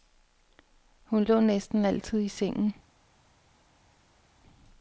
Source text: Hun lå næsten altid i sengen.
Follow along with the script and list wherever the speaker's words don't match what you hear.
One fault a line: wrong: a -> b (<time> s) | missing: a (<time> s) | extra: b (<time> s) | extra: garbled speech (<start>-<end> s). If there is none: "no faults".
no faults